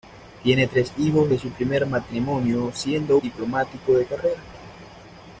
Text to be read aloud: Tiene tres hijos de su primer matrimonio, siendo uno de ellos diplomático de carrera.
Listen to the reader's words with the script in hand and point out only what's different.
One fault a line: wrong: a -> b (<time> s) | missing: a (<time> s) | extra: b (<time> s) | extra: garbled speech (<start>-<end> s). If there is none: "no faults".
missing: uno de ellos (3.2 s)